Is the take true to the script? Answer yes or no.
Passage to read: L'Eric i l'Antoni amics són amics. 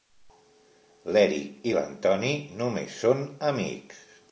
no